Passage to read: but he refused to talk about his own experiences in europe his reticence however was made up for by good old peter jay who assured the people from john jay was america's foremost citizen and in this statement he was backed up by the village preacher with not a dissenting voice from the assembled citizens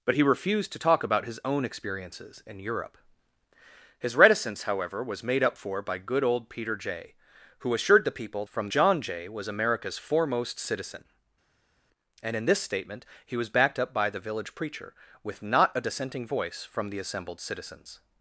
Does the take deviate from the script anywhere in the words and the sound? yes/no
no